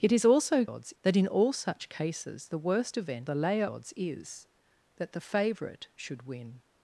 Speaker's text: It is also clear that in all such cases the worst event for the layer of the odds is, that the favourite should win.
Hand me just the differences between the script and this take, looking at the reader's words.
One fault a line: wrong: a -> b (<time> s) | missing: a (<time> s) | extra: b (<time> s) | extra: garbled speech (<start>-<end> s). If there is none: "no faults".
wrong: clear -> odds (0.7 s)
missing: for (3.3 s)
missing: of the (3.6 s)